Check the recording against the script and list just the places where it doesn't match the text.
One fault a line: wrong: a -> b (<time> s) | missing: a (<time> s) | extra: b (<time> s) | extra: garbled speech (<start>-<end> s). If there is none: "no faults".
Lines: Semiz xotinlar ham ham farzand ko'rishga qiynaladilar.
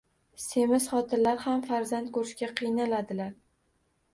missing: ham (1.6 s)